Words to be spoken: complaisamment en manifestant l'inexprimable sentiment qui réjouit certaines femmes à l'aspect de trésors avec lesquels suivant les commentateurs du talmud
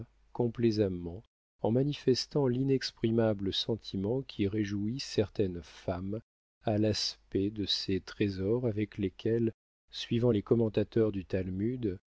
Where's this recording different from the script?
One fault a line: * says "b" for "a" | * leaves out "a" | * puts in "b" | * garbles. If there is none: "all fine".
* puts in "ces"